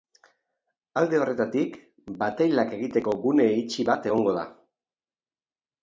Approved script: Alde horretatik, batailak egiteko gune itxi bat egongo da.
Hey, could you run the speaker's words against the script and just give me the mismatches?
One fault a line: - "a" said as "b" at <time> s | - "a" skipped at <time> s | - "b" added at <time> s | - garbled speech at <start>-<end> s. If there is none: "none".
none